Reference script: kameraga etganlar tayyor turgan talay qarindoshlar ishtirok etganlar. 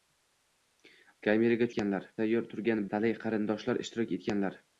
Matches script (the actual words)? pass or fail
pass